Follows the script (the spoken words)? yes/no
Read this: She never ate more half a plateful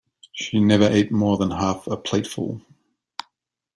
no